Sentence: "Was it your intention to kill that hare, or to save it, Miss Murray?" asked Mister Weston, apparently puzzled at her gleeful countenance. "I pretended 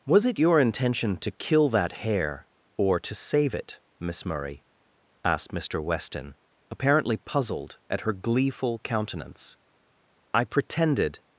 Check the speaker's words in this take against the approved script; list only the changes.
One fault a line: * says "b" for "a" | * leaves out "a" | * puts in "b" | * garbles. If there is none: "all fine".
all fine